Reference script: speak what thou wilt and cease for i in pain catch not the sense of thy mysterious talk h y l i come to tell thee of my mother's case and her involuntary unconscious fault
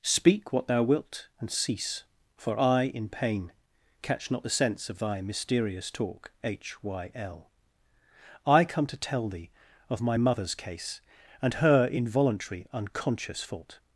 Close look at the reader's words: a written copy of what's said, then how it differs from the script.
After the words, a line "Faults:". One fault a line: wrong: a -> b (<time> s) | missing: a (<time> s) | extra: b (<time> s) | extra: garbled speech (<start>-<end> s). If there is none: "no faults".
speak what thou wilt and cease for i in pain catch not the sense of thy mysterious talk h y l i come to tell thee of my mother's case and her involuntary unconscious fault
Faults:
no faults